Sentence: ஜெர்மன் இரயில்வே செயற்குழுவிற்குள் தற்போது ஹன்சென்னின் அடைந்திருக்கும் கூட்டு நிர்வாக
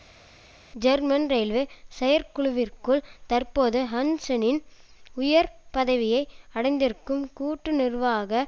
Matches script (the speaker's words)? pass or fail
fail